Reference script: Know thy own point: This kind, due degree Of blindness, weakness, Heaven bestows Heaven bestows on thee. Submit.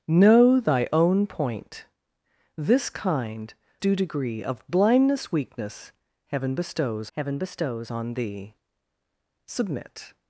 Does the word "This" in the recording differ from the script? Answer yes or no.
no